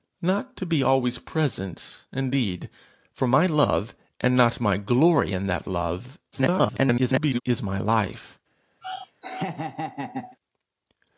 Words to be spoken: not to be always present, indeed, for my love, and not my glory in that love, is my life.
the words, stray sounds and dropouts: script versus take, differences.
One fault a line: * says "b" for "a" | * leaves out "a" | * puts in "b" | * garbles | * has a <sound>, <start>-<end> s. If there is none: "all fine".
* garbles
* has a laugh, 8.8-10.4 s